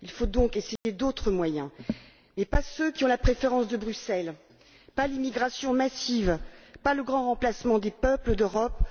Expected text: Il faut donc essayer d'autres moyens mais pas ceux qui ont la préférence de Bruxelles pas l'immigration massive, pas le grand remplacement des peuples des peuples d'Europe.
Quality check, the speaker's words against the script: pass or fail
fail